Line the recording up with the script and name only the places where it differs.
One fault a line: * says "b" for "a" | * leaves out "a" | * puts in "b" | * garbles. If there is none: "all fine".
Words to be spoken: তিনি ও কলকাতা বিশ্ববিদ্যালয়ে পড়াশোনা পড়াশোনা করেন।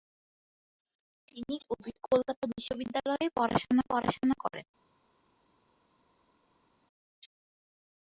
all fine